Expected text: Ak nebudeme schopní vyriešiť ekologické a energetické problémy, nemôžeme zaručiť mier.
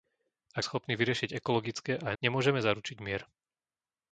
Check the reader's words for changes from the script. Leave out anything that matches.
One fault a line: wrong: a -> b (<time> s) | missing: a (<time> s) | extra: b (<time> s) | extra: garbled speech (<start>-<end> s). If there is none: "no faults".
missing: nebudeme (0.7 s)
missing: energetické problémy (2.1 s)